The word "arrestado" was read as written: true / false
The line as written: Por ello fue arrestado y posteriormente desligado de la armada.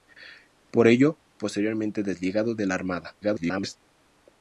false